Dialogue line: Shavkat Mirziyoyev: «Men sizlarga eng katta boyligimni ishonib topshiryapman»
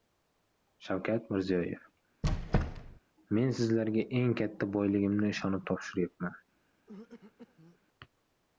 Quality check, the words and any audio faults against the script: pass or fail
fail